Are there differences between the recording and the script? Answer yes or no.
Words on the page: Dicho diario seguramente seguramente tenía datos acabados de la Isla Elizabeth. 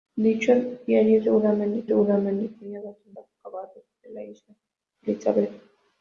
no